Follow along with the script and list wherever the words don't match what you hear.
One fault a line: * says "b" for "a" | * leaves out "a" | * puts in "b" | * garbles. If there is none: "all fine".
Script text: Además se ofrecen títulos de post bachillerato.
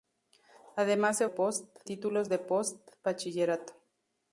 * says "post" for "ofrecen"